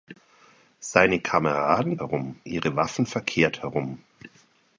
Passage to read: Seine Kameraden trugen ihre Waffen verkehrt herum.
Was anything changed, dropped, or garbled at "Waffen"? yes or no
no